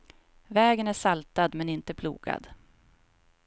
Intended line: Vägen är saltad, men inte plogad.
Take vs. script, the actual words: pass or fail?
pass